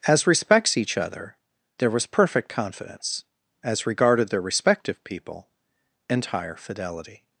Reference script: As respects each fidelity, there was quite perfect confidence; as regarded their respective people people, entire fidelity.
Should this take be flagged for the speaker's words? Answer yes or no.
yes